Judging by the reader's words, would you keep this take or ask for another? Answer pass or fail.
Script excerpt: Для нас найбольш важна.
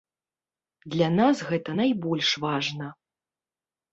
fail